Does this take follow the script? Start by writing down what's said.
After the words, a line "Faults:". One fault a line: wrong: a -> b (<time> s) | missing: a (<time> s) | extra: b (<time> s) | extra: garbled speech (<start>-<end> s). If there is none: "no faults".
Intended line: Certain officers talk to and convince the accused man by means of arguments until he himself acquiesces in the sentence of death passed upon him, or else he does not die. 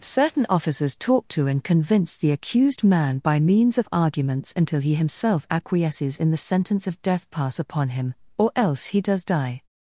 Certain officers talk to and convince the accused man by means of arguments until he himself acquiesces in the sentence of death pass upon him, or else he does die.
Faults:
wrong: passed -> pass (7.3 s)
missing: not (9.2 s)